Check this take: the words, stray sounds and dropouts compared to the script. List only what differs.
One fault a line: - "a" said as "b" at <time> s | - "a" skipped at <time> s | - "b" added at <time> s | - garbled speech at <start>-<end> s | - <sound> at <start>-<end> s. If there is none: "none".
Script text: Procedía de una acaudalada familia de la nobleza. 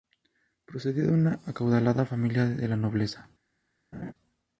- laugh at 3.9-4.1 s